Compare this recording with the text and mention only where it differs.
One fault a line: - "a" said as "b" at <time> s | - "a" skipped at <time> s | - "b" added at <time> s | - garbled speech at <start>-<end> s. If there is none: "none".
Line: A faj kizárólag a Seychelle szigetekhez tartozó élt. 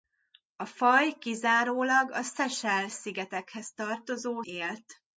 none